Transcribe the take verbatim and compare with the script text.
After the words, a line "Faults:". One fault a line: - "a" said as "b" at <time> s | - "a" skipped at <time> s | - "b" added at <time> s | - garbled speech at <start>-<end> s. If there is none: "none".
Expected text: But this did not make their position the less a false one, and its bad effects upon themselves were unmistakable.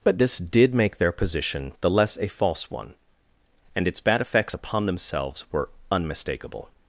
But this did make their position the less a false one, and its bad effects upon themselves were unmistakable.
Faults:
- "not" skipped at 0.7 s